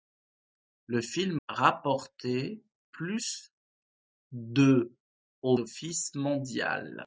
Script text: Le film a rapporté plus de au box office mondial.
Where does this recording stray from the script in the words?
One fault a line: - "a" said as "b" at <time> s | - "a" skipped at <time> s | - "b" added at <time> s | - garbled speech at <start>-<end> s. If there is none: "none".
- "a" skipped at 1.4 s
- "box" skipped at 5.6 s